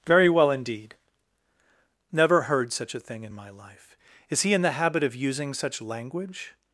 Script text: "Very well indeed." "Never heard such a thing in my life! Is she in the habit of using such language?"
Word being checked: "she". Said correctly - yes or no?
no